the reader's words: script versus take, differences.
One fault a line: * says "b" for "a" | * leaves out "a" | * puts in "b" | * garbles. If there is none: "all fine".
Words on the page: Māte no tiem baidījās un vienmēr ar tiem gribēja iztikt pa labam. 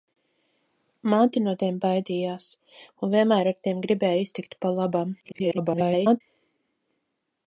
* garbles